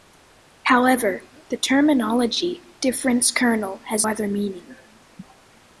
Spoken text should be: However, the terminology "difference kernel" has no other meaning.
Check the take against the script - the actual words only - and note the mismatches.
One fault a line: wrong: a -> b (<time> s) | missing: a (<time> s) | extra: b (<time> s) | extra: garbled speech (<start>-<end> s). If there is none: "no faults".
missing: no (4.1 s)